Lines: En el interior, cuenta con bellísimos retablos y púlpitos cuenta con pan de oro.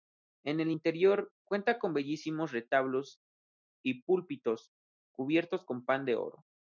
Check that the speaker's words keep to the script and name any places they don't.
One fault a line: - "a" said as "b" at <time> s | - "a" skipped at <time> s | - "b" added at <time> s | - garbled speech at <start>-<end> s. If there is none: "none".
- "cuenta" said as "cubiertos" at 5.1 s